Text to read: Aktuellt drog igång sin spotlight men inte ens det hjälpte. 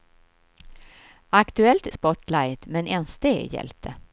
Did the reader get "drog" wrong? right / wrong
wrong